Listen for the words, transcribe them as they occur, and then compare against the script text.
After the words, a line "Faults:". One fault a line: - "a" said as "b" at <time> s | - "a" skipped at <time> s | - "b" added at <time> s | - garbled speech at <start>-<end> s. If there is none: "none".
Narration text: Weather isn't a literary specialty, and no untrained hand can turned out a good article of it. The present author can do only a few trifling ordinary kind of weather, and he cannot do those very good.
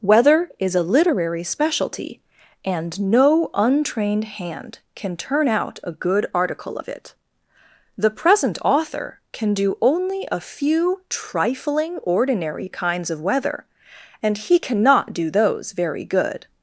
Weather is a literary specialty, and no untrained hand can turn out a good article of it. The present author can do only a few trifling ordinary kinds of weather, and he cannot do those very good.
Faults:
- "isn't" said as "is" at 0.6 s
- "turned" said as "turn" at 5.2 s
- "kind" said as "kinds" at 12.7 s